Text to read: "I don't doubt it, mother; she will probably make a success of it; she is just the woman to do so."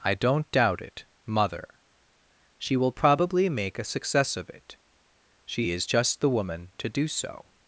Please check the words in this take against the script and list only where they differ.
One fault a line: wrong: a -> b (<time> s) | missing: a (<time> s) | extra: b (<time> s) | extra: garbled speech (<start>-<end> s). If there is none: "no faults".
no faults